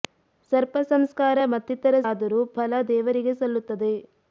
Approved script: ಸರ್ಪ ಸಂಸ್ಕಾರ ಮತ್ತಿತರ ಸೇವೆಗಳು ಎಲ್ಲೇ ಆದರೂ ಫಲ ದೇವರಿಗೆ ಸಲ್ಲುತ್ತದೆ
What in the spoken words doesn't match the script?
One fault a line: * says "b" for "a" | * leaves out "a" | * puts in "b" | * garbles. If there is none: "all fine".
* leaves out "ಸೇವೆಗಳು ಎಲ್ಲೇ"